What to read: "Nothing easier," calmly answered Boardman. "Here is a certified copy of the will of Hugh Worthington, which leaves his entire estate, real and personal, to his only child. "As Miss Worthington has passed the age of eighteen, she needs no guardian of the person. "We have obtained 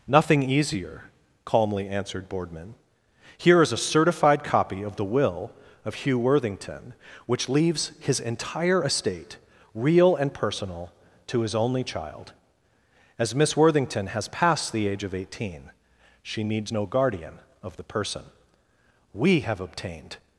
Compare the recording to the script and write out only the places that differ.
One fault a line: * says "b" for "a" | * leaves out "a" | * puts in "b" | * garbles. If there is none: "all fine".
all fine